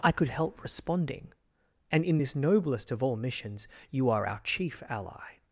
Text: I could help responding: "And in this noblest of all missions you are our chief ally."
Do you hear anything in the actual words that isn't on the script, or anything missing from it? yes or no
no